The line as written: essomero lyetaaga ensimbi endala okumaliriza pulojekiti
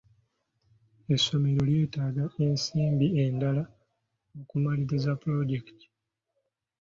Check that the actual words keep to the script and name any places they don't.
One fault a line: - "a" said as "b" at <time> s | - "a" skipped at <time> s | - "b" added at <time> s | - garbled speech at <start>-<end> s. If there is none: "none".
none